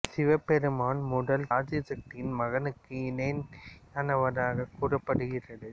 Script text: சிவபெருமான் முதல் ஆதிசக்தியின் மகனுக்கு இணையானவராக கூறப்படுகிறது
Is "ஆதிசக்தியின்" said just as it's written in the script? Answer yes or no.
yes